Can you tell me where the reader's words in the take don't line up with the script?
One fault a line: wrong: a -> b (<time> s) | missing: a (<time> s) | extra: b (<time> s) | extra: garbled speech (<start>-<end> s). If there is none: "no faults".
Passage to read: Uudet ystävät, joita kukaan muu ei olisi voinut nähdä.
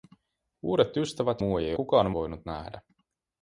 missing: joita kukaan (1.4 s)
wrong: olisi -> kukaan (1.7 s)